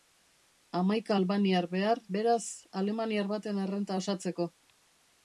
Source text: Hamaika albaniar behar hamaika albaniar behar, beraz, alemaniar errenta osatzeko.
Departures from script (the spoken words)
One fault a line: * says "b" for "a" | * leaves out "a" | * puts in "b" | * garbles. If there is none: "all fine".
* leaves out "hamaika albaniar behar"
* puts in "baten"